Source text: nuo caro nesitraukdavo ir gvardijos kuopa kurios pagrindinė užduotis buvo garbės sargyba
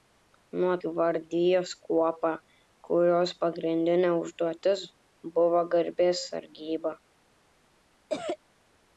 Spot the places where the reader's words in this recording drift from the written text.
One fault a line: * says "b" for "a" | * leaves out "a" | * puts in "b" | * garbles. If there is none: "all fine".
* leaves out "caro nesitraukdavo ir"